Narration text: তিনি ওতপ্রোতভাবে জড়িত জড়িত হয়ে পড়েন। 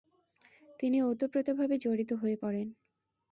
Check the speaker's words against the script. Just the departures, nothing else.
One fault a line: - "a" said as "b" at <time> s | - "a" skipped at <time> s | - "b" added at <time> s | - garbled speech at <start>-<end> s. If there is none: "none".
- "জড়িত" skipped at 2.1 s